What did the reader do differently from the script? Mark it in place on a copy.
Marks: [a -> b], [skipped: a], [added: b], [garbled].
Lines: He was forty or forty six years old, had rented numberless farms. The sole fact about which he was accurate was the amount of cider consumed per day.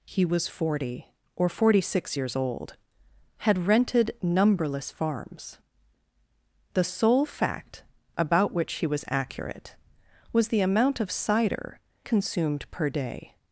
He was forty or forty six years old, had rented numberless farms. The sole fact about which he was accurate was the amount of cider consumed per day.